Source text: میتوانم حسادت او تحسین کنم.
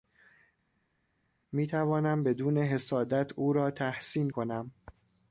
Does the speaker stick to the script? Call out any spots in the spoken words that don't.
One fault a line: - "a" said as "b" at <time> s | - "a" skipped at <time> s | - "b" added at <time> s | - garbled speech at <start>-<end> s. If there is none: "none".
- "بدون" added at 2.2 s
- "را" added at 3.5 s